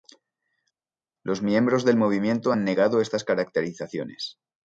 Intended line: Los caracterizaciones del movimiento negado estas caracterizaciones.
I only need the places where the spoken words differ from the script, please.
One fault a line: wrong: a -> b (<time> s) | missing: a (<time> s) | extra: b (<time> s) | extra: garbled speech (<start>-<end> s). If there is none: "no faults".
wrong: caracterizaciones -> miembros (1.4 s)
extra: han (2.5 s)